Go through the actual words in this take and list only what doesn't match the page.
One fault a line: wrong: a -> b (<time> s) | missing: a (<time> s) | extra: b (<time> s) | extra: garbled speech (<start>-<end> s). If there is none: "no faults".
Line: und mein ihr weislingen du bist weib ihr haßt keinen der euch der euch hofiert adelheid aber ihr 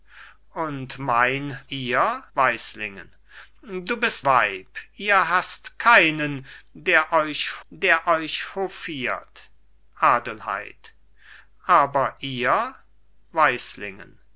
no faults